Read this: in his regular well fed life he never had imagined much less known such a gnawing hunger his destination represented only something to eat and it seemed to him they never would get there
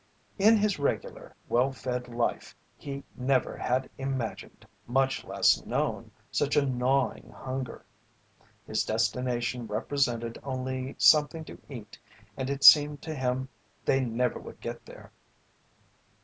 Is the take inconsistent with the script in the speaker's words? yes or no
no